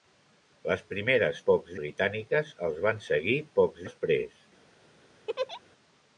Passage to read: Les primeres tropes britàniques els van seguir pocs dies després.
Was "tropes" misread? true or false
true